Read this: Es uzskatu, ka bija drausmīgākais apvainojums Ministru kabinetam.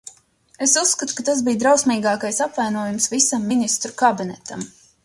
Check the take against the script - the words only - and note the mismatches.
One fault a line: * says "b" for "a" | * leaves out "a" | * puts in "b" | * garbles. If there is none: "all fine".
* puts in "tas"
* puts in "visam"